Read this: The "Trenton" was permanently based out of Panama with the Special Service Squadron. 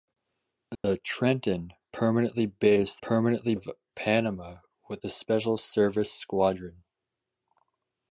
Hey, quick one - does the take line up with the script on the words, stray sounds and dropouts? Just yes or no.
no